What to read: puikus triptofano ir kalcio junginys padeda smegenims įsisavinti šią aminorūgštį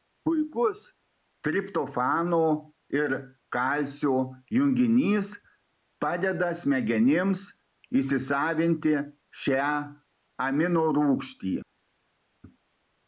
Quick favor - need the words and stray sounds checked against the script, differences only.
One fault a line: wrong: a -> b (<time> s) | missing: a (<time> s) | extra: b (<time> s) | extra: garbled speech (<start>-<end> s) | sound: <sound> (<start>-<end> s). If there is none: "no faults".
no faults